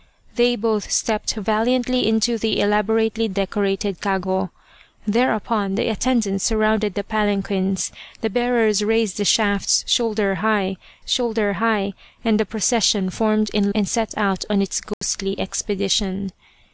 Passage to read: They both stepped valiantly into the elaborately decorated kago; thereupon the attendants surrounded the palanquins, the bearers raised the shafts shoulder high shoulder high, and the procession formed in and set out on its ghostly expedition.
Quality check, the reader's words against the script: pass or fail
pass